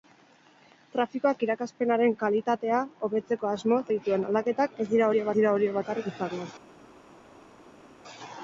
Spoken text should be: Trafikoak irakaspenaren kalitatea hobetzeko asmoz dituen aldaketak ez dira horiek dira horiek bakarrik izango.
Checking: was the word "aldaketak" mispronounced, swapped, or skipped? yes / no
no